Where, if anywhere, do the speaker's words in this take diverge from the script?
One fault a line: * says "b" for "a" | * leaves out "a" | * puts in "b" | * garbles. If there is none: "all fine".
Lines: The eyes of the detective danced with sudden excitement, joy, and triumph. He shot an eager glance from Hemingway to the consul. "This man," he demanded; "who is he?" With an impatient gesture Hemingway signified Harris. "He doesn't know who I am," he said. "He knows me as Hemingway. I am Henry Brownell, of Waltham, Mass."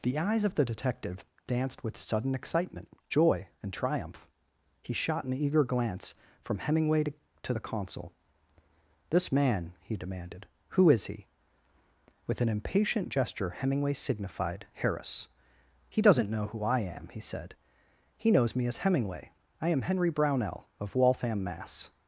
* puts in "to"